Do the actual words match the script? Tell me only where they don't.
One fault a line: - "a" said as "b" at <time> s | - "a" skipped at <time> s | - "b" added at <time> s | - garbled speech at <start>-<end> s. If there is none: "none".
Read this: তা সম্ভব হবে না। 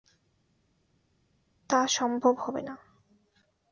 none